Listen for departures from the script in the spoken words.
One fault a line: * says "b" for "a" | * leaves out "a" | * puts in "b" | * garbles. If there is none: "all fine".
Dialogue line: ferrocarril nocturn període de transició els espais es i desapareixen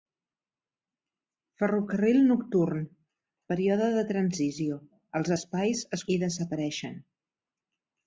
all fine